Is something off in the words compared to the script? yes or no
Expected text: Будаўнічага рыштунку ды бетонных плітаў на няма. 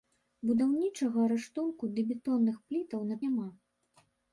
no